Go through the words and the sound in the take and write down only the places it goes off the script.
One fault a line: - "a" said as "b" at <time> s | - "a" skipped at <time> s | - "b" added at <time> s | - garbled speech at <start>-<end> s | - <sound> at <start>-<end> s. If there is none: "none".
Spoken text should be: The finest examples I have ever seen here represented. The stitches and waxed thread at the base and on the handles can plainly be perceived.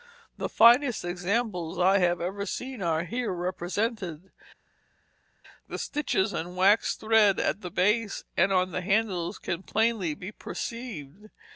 - "are" added at 2.8 s